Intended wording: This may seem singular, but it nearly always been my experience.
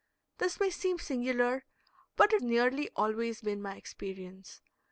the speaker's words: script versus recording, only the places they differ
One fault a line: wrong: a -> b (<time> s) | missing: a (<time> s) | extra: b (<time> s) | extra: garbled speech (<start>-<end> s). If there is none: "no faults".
no faults